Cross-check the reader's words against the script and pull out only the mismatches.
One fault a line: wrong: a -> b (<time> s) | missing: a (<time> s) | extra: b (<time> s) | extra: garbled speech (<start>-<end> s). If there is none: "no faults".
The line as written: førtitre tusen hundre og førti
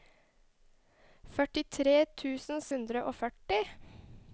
no faults